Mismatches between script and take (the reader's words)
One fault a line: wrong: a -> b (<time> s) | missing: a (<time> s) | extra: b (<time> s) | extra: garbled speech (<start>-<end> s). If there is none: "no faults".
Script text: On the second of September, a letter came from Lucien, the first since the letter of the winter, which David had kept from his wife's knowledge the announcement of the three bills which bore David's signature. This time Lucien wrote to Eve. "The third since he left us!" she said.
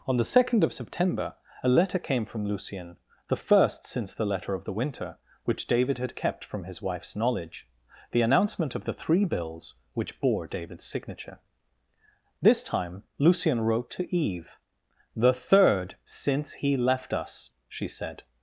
no faults